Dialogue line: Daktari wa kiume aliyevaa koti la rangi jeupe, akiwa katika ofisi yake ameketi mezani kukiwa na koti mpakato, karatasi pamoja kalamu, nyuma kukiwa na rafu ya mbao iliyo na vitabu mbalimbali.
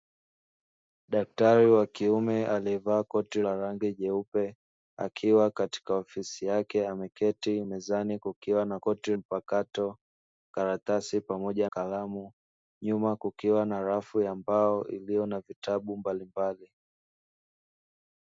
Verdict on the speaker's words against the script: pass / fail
pass